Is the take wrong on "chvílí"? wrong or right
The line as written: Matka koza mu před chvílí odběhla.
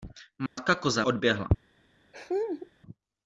wrong